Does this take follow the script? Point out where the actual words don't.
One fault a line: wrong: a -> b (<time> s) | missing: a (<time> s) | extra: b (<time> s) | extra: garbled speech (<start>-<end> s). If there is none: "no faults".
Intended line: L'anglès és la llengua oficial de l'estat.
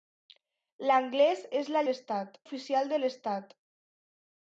wrong: llengua -> l'estat (1.9 s)